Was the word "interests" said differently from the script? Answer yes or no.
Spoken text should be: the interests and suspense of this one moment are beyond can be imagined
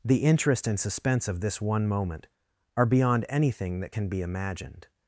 yes